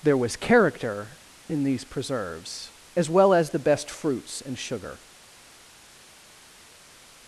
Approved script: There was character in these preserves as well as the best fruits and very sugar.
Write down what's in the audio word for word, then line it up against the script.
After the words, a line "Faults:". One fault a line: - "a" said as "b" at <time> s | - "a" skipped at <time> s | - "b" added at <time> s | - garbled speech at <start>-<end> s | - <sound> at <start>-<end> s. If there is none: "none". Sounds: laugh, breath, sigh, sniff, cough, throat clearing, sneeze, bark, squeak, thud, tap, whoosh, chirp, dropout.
There was character in these preserves as well as the best fruits and sugar.
Faults:
- "very" skipped at 4.6 s